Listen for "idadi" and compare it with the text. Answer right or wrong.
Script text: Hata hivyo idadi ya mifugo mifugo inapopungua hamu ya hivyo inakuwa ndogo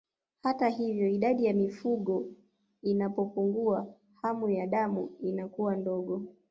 right